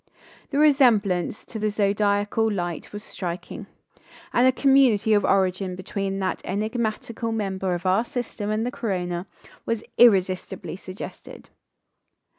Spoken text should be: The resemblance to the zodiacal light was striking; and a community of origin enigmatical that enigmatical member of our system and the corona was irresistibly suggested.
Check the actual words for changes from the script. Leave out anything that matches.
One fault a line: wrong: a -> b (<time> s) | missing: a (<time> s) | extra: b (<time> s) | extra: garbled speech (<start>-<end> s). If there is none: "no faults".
wrong: enigmatical -> between (5.8 s)